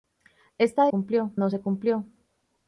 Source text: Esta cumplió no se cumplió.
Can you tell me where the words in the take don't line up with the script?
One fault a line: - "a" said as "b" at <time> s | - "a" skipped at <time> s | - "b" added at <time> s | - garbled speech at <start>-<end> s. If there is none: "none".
none